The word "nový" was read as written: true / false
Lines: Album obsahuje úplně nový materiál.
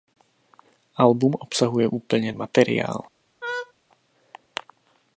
false